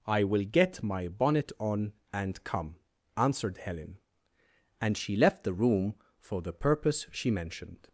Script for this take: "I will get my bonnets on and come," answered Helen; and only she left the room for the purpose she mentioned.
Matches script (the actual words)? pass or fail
fail